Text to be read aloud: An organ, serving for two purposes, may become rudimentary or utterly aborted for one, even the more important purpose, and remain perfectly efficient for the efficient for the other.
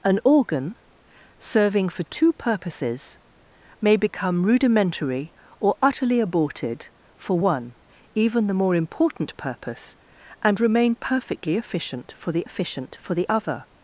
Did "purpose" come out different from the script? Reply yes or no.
no